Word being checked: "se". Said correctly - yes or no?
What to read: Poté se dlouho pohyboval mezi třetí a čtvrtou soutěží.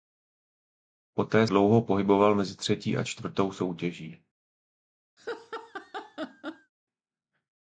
no